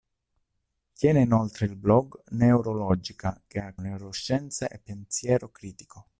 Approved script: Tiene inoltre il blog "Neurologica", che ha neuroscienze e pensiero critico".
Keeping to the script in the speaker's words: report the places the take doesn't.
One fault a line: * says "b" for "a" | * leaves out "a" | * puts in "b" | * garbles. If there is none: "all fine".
all fine